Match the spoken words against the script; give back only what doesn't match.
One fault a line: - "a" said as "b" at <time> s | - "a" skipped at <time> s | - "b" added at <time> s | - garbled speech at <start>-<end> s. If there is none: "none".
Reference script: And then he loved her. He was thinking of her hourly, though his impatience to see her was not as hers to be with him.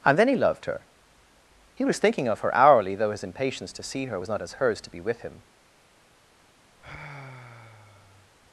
none